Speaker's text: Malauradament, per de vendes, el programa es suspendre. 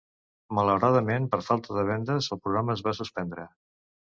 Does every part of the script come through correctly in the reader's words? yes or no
no